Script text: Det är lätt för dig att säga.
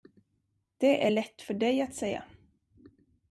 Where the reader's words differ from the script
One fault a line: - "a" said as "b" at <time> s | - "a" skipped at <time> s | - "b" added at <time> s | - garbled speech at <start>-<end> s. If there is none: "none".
none